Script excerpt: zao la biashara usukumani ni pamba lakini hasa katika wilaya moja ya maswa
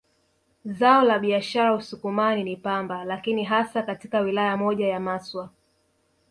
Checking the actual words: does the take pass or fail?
pass